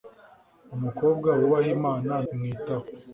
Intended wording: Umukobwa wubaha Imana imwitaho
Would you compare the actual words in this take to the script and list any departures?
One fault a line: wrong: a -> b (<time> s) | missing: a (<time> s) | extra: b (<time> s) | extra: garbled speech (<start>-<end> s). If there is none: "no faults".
no faults